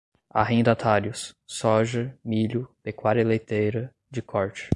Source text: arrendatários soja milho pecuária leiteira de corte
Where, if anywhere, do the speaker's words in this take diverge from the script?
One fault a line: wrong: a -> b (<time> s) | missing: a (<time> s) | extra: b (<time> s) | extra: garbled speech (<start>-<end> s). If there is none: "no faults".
no faults